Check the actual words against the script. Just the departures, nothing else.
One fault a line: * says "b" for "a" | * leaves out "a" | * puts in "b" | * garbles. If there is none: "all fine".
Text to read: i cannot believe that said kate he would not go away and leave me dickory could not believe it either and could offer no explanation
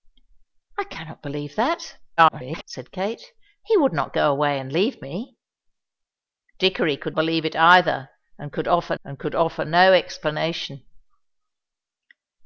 * garbles
* leaves out "not"
* puts in "and could offer"